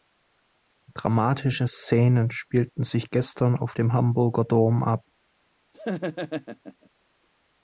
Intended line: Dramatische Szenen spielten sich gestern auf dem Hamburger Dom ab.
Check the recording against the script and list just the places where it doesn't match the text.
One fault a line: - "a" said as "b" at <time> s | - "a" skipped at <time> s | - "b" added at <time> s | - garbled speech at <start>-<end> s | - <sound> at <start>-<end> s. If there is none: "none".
- laugh at 5.7-6.9 s